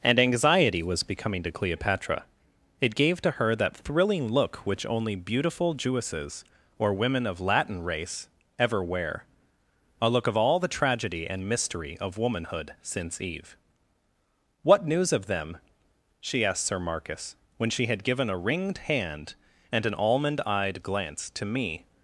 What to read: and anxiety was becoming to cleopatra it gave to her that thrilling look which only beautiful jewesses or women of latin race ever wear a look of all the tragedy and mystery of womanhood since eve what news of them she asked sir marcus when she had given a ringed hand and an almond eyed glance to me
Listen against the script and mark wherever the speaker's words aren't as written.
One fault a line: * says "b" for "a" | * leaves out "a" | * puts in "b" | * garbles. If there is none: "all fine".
all fine